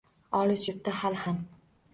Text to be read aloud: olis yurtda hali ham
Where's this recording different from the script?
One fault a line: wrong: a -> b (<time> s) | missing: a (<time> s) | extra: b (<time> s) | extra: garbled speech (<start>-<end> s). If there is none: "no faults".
no faults